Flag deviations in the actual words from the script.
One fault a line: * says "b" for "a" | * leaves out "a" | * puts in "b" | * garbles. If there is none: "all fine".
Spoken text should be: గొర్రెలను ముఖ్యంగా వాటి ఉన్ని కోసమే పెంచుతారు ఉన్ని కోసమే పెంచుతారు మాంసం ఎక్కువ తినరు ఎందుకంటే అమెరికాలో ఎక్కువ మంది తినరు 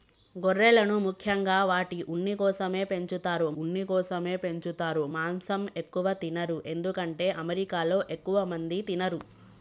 all fine